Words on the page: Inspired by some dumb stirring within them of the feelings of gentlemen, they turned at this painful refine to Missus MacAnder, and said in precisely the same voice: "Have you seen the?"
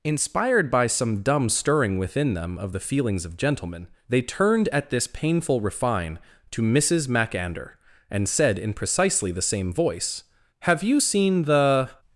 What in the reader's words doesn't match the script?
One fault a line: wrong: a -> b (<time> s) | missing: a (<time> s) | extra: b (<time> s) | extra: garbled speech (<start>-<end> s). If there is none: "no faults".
no faults